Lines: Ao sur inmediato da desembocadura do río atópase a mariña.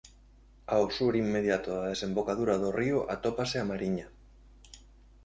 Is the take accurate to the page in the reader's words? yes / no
yes